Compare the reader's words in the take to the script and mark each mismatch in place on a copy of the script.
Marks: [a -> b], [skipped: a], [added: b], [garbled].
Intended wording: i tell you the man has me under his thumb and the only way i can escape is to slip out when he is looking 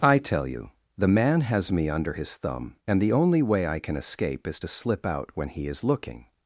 i tell you the man has me under his thumb and the only way i can escape is to slip out when he is looking